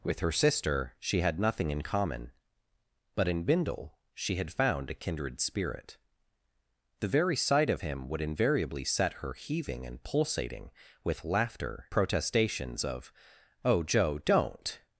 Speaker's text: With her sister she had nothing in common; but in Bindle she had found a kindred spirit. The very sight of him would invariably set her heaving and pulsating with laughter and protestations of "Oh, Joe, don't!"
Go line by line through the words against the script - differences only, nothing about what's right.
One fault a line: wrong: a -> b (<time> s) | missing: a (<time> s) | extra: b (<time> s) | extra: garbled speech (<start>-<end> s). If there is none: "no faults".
missing: and (11.9 s)